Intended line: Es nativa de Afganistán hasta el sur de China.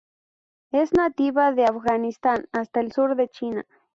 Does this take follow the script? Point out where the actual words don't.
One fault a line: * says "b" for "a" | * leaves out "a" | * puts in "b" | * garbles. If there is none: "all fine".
all fine